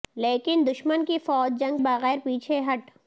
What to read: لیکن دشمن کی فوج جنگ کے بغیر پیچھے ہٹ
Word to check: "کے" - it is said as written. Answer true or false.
false